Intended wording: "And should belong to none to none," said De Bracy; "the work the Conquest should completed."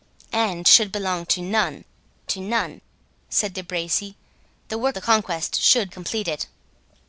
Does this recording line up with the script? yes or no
yes